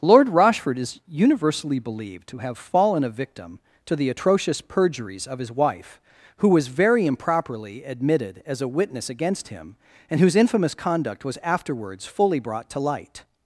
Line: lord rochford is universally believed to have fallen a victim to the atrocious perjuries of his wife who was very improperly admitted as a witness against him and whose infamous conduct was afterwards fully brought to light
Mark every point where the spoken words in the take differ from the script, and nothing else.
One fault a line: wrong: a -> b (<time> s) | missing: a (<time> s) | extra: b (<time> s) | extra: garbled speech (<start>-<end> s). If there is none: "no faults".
no faults